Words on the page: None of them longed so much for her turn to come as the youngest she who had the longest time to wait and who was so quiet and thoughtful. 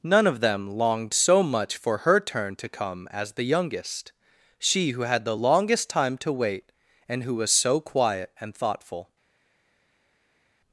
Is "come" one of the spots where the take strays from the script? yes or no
no